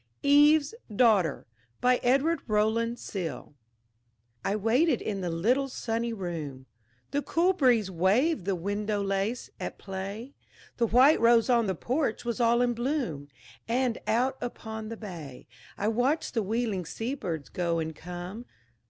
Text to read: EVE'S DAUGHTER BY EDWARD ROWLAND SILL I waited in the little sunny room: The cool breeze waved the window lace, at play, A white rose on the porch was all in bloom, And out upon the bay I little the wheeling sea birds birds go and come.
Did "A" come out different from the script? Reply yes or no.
yes